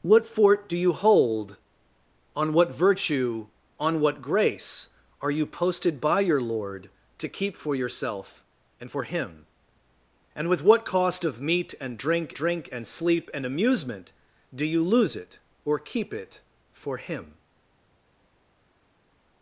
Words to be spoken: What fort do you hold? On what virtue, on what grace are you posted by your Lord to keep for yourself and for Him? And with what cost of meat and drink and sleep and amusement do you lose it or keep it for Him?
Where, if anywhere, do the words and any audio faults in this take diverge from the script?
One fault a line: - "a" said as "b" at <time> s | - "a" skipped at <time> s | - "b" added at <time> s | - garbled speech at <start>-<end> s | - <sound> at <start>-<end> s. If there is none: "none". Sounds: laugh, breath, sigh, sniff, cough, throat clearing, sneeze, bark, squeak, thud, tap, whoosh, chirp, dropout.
- "drink" added at 12.3 s